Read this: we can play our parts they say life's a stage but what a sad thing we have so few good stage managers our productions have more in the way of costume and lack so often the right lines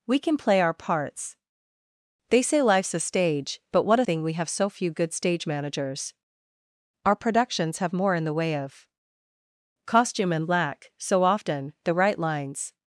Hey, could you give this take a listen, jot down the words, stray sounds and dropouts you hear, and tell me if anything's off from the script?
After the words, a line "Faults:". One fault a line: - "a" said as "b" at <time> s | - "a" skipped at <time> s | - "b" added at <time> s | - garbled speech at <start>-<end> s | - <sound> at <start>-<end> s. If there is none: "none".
we can play our parts they say life's a stage but what a thing we have so few good stage managers our productions have more in the way of costume and lack so often the right lines
Faults:
- "sad" skipped at 4.0 s